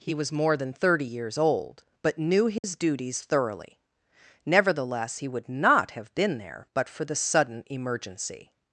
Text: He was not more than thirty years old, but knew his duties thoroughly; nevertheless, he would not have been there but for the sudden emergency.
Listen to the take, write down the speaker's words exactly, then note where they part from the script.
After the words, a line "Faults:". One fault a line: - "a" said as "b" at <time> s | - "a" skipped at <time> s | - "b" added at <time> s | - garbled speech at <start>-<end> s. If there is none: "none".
He was more than thirty years old, but knew his duties thoroughly; nevertheless, he would not have been there but for the sudden emergency.
Faults:
- "not" skipped at 0.3 s